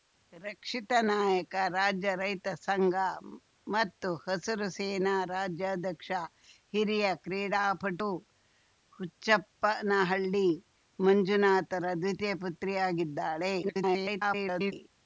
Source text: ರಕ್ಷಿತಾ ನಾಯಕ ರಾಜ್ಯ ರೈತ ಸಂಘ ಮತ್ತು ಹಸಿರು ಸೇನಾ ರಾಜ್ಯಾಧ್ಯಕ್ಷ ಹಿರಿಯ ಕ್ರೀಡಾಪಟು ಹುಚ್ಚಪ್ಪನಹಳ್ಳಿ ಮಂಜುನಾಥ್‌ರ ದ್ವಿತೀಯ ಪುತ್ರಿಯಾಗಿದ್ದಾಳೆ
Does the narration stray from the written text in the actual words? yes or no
yes